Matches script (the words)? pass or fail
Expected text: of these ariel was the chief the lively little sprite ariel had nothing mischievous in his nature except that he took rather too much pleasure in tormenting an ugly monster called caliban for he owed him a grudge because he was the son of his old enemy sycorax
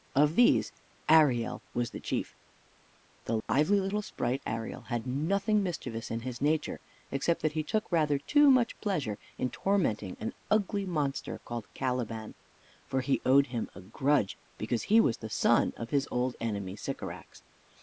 pass